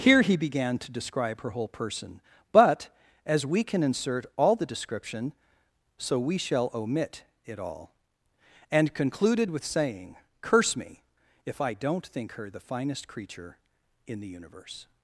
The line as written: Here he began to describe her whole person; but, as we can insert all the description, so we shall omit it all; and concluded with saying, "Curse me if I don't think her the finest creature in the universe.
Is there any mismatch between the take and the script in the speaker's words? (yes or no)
no